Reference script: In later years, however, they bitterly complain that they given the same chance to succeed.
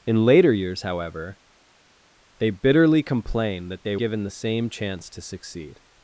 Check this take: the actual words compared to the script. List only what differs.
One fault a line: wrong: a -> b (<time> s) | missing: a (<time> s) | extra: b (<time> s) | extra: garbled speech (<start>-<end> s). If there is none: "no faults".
no faults